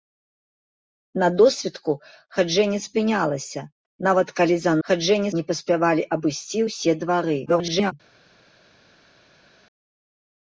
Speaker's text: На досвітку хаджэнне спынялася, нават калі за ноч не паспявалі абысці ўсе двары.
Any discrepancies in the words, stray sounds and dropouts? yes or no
yes